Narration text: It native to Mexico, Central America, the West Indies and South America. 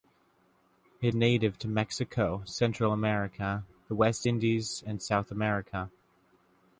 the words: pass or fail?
pass